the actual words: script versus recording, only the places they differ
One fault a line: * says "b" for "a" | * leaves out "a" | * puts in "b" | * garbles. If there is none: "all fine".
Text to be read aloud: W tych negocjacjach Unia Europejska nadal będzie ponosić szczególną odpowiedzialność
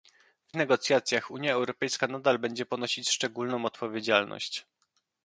* leaves out "tych"